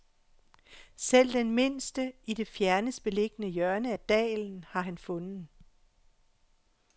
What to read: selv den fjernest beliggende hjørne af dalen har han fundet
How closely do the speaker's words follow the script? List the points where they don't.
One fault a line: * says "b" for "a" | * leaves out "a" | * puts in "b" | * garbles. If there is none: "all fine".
* puts in "mindste i det"